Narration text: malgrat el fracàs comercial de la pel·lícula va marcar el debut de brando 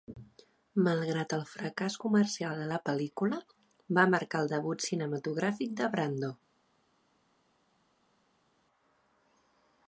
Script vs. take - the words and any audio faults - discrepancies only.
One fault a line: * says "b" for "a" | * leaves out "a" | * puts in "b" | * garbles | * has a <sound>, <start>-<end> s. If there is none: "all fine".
* puts in "cinematogràfic"